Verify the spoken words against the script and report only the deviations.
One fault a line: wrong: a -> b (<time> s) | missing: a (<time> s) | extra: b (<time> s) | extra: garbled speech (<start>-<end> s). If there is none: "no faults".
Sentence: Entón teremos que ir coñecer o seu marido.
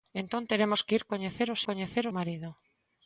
wrong: seu -> coñecer (1.7 s)